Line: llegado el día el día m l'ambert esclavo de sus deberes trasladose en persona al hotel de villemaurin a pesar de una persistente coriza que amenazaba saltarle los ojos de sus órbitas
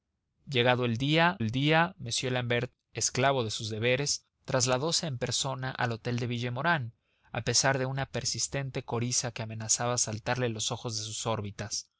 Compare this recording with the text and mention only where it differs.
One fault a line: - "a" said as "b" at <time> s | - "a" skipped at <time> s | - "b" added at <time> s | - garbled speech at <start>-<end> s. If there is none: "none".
none